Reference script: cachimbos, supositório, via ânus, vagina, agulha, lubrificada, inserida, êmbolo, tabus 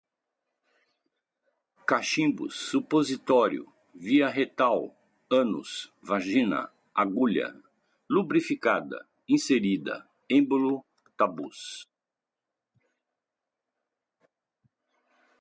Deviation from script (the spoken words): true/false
true